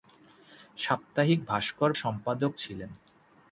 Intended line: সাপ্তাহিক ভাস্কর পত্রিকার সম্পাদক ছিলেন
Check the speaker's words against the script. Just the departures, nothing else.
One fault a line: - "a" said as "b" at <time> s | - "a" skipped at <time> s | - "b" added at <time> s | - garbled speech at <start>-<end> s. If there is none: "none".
- "পত্রিকার" skipped at 1.9 s